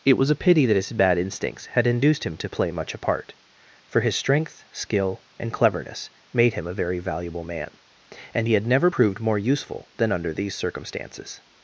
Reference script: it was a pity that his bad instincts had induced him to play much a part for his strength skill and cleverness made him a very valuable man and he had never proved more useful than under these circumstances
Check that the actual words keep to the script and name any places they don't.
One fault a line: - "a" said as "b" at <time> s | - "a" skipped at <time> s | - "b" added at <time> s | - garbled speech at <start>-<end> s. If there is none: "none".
none